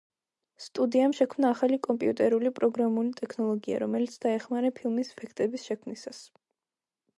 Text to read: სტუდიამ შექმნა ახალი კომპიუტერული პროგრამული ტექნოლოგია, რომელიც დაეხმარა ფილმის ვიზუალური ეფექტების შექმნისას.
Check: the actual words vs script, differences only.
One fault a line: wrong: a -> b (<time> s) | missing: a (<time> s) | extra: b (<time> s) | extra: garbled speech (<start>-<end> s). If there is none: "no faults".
missing: ვიზუალური (5.1 s)